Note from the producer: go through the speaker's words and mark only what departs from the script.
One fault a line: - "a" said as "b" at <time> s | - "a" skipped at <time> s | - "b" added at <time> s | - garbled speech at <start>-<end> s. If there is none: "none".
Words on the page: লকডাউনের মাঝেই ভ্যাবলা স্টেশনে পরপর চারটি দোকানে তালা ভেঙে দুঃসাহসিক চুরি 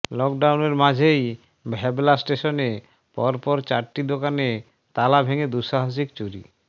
none